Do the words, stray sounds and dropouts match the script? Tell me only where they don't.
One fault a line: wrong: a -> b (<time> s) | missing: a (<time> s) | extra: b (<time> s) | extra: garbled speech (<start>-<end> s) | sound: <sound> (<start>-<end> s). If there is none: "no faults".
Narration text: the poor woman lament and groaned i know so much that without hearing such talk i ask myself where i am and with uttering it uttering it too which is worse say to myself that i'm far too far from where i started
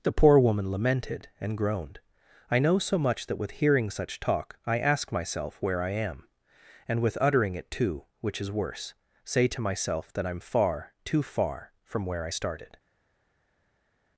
wrong: lament -> lamented (0.7 s)
wrong: without -> with (3.4 s)
missing: uttering it (7.7 s)